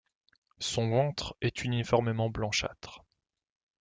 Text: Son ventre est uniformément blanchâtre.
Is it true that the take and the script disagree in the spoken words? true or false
false